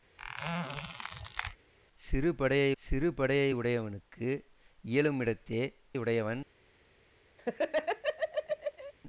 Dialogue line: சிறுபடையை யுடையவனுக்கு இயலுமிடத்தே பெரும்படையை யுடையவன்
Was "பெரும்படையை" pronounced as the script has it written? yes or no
no